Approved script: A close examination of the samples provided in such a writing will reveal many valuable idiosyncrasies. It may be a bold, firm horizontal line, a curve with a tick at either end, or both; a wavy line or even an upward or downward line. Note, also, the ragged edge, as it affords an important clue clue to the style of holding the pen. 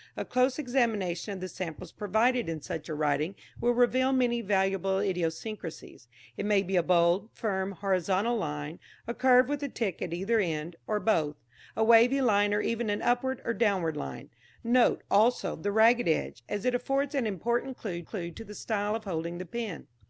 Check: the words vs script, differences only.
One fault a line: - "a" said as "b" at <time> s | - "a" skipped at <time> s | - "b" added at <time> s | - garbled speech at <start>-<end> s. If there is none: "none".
none